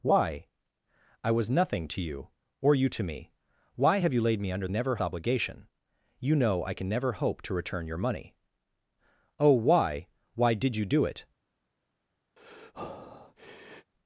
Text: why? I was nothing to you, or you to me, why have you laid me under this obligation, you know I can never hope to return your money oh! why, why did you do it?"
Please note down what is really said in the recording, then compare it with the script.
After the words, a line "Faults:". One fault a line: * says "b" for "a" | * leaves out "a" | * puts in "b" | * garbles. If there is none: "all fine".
why? I was nothing to you, or you to me, why have you laid me under never obligation, you know I can never hope to return your money oh! why, why did you do it?"
Faults:
* says "never" for "this"